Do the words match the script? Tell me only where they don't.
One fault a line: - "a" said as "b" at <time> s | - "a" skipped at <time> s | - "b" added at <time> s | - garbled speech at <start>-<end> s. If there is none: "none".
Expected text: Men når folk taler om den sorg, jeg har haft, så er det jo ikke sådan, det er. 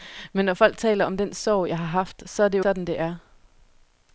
- "ikke" skipped at 2.7 s